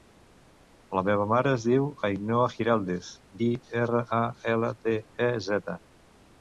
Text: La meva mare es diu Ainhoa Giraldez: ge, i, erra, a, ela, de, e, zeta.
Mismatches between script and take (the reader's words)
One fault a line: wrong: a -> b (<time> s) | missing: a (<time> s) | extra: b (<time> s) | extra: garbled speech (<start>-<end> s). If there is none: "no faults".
missing: ge (3.1 s)